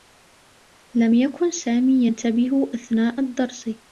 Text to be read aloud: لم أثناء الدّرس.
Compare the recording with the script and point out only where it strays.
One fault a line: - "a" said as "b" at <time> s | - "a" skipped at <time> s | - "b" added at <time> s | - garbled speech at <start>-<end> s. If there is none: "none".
- "يكن سامي ينتبه" added at 1.1 s